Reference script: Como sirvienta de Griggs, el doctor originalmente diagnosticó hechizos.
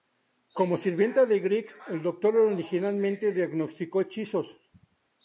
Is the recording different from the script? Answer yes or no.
no